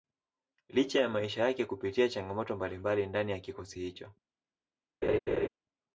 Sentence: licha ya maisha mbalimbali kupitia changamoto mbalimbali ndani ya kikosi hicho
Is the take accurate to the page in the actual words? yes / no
no